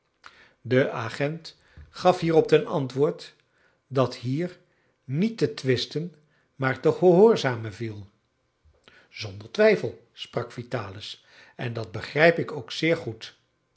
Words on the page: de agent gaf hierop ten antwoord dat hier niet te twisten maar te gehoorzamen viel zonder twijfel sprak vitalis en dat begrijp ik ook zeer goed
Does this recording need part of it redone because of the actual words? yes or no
no